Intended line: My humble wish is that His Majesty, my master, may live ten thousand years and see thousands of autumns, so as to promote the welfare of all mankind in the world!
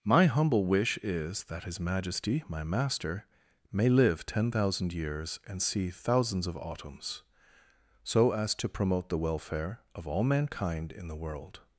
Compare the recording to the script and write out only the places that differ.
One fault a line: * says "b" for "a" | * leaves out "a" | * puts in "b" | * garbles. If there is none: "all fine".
all fine